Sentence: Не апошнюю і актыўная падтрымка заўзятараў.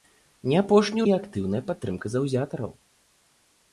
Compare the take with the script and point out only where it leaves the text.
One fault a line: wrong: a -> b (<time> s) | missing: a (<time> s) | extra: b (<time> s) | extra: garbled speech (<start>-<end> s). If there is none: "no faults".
no faults